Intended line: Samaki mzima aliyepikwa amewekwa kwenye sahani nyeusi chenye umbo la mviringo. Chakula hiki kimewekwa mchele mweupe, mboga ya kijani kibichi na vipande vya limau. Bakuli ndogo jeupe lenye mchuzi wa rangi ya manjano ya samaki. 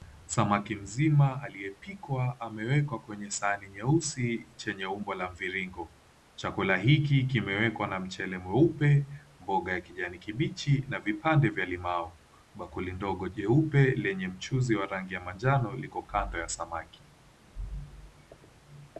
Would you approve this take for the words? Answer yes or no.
no